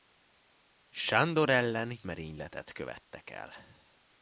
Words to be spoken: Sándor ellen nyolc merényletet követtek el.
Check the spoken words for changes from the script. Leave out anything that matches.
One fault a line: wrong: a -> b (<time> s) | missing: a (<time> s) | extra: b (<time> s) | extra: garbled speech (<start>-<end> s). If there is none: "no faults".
missing: nyolc (2.0 s)